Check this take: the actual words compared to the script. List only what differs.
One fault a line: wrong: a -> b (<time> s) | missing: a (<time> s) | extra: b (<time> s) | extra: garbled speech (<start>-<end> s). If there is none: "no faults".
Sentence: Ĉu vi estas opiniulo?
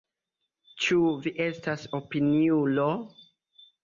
no faults